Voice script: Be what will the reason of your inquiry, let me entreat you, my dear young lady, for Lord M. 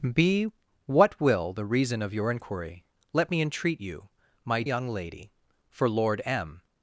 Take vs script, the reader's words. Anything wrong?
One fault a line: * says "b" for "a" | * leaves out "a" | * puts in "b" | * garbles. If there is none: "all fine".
* leaves out "dear"